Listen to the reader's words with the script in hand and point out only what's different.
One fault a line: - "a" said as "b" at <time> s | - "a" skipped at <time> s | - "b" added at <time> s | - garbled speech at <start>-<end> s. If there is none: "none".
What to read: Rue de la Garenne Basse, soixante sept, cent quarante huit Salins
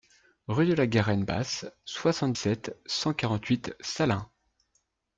none